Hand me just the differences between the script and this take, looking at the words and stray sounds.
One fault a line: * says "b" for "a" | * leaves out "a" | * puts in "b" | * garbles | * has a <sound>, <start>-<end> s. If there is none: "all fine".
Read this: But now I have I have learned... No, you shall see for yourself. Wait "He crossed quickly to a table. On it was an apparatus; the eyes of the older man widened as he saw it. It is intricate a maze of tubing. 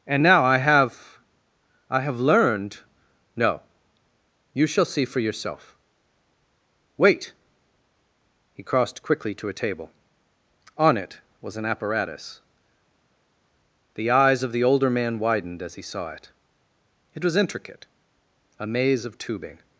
* says "And" for "But"
* says "was" for "is"